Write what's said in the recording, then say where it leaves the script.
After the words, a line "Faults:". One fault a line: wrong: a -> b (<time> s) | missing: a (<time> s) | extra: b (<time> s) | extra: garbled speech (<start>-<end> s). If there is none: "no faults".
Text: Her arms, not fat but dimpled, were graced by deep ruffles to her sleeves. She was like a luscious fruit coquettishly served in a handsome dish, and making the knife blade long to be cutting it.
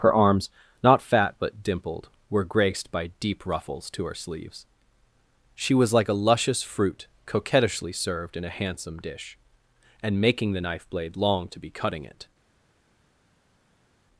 Her arms, not fat but dimpled, were graced by deep ruffles to her sleeves. She was like a luscious fruit coquettishly served in a handsome dish, and making the knife blade long to be cutting it.
Faults:
no faults